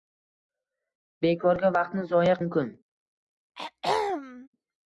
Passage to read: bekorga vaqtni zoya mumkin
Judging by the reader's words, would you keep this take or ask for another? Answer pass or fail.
pass